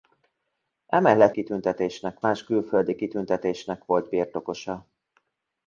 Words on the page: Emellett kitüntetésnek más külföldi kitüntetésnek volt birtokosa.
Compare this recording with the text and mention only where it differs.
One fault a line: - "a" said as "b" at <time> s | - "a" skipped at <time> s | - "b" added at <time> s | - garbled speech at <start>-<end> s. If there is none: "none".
none